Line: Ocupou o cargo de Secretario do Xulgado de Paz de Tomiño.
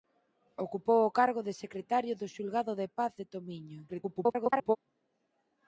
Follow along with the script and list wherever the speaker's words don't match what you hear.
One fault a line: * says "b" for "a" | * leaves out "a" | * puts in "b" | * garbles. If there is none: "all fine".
* garbles